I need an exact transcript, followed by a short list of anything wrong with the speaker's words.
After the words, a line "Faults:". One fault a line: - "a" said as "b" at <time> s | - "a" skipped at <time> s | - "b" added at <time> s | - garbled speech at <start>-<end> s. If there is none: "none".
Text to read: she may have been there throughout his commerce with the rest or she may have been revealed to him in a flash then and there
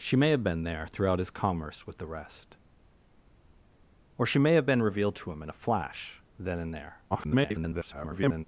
she may have been there throughout his commerce with the rest or she may have been revealed to him in a flash then and there [garbled]
Faults:
- garbled speech at 7.1-8.4 s